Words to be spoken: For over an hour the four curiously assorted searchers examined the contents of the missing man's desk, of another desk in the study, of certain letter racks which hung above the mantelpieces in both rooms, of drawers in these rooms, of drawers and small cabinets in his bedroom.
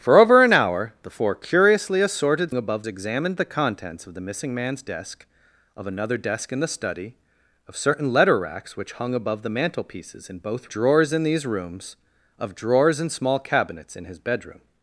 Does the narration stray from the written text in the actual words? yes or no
yes